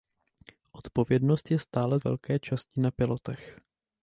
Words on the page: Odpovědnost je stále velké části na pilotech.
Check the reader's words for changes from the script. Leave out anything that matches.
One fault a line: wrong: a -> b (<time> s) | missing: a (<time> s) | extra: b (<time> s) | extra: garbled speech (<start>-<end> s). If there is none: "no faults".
no faults